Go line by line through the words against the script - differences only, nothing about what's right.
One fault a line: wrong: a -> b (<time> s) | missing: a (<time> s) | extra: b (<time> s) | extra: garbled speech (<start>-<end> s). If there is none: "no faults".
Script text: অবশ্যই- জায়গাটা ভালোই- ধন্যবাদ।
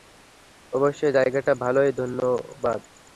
no faults